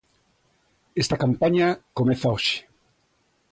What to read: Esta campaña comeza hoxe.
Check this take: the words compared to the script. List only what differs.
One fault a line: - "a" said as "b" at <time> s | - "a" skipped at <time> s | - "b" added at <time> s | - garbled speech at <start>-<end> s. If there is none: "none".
none